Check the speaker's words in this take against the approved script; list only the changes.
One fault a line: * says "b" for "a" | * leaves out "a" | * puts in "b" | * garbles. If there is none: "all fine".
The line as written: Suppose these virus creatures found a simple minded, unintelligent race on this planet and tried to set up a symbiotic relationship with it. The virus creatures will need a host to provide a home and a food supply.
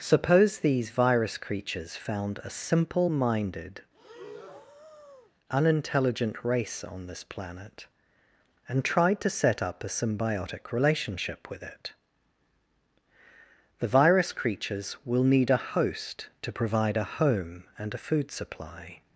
all fine